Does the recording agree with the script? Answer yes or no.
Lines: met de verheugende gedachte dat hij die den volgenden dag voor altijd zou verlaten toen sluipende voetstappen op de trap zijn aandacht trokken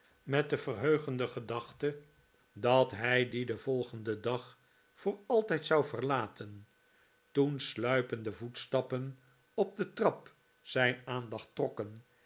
yes